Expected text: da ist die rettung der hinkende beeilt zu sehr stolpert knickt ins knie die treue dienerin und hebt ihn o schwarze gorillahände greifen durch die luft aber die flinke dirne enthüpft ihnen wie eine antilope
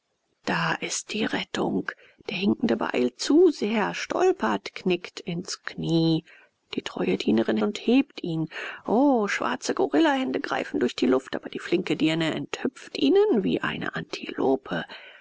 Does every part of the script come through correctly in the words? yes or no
yes